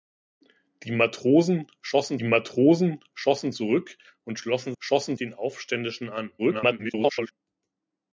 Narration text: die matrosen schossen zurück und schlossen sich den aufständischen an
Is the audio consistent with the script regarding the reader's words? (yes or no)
no